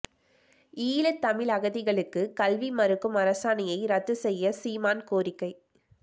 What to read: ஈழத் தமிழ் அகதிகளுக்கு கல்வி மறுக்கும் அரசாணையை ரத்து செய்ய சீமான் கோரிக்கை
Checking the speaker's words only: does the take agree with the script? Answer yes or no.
yes